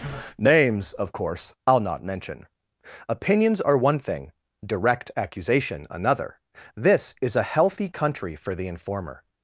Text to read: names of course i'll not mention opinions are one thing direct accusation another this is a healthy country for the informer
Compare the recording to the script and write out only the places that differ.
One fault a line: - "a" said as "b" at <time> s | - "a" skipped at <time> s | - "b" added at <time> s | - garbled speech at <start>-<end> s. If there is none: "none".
none